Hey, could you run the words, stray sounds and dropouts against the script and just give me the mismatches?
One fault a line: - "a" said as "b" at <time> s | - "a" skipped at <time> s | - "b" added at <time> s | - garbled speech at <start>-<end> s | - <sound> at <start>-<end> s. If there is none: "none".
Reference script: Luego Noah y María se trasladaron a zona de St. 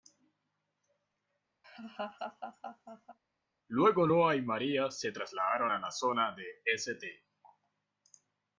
- laugh at 1.6-3.2 s
- "la" added at 5.8 s